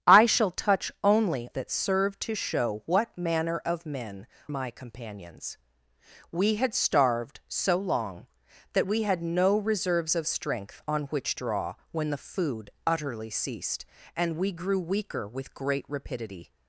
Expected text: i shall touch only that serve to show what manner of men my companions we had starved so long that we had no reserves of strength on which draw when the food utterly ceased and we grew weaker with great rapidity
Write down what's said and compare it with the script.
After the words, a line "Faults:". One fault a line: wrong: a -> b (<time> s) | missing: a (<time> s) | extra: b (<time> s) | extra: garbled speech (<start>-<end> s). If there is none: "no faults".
i shall touch only that serve to show what manner of men my companions we had starved so long that we had no reserves of strength on which draw when the food utterly ceased and we grew weaker with great rapidity
Faults:
no faults